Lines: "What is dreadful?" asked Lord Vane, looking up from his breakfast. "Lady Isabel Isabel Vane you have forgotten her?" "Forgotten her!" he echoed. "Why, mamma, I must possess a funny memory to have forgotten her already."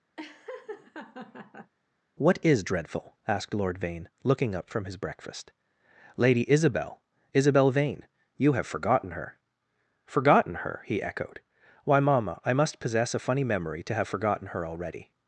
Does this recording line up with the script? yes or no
yes